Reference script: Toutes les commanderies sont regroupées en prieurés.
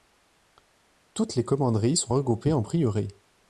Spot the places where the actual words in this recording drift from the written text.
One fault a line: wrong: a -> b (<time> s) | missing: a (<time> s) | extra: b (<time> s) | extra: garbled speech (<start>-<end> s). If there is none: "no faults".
no faults